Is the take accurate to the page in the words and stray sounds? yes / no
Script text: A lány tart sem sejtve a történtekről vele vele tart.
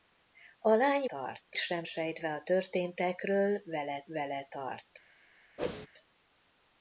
no